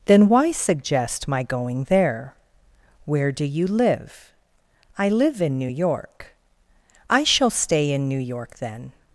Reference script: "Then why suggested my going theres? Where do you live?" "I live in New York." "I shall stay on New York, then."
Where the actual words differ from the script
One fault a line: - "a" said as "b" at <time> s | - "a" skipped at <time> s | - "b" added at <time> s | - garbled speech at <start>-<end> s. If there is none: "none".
- "suggested" said as "suggest" at 0.5 s
- "theres" said as "there" at 1.9 s
- "on" said as "in" at 7.9 s